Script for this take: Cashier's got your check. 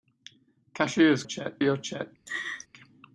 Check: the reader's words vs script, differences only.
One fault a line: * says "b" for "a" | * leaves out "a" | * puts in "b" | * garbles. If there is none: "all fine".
* says "check" for "got"